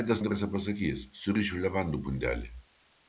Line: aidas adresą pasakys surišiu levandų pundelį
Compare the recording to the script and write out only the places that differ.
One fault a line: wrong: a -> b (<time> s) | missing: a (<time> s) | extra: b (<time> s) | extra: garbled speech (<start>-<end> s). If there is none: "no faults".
no faults